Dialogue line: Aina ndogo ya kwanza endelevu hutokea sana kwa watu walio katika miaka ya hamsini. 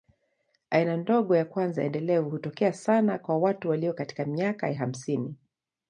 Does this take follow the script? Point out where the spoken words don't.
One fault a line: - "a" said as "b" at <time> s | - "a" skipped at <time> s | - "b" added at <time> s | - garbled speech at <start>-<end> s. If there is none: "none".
none